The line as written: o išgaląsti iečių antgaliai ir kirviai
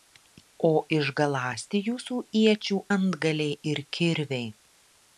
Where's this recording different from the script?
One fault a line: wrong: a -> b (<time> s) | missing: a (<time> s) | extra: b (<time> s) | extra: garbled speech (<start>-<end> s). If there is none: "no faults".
extra: jūsų (1.9 s)